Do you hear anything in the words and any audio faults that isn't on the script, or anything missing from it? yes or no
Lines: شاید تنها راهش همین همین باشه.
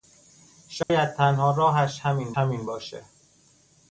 yes